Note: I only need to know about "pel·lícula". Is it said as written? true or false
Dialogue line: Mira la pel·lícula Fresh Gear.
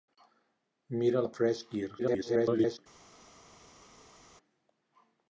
false